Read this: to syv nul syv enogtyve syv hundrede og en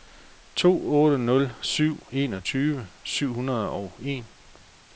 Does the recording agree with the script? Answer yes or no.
no